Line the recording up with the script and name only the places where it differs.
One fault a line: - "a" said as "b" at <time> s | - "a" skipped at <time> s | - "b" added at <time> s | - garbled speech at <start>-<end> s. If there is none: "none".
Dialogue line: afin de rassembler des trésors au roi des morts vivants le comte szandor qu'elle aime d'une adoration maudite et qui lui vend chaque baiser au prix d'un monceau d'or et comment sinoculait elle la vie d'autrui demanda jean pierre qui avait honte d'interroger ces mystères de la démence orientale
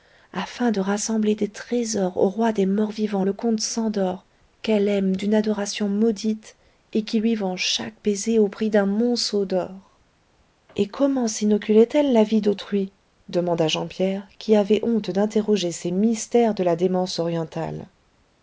none